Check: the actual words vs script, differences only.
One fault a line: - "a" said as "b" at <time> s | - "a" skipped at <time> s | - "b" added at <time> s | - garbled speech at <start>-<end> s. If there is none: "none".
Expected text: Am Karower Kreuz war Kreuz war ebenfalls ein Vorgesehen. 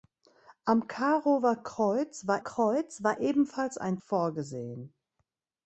none